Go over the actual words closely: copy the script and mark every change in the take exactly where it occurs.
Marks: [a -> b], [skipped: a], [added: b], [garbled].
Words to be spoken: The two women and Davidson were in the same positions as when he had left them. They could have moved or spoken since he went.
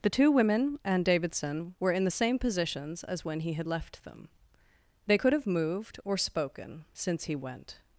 The two women and Davidson were in the same positions as when he had left them. They could have moved or spoken since he went.